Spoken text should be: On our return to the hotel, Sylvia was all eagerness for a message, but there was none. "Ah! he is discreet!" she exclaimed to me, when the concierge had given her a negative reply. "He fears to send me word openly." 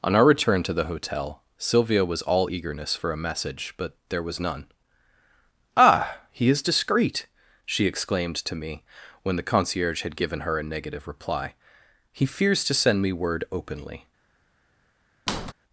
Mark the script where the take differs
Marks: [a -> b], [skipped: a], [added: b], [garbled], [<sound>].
On our return to the hotel, Sylvia was all eagerness for a message, but there was none. "Ah! he is discreet!" she exclaimed to me, when the concierge had given her a negative reply. "He fears to send me word openly." [squeak]